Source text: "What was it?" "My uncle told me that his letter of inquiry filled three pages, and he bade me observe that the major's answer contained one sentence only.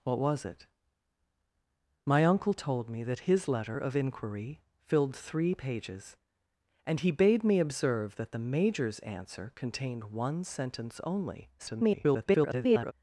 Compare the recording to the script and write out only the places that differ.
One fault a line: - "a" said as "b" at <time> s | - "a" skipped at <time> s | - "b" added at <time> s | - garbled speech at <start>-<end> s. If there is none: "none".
- garbled speech at 11.6-12.9 s